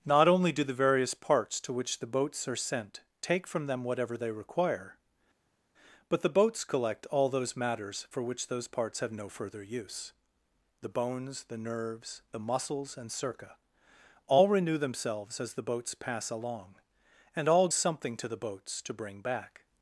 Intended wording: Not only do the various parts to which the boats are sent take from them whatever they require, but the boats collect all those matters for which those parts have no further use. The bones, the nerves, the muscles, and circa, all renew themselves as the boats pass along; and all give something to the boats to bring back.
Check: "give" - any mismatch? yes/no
yes